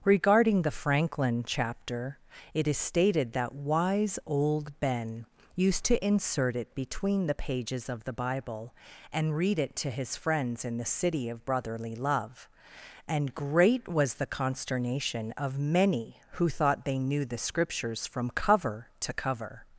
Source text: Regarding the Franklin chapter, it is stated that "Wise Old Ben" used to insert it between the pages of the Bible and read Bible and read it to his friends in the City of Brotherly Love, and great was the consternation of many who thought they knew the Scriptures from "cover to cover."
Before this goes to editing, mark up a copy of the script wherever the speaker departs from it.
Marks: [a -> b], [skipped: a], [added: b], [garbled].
Regarding the Franklin chapter, it is stated that "Wise Old Ben" used to insert it between the pages of the Bible and read [skipped: Bible and read] it to his friends in the City of Brotherly Love, and great was the consternation of many who thought they knew the Scriptures from "cover to cover."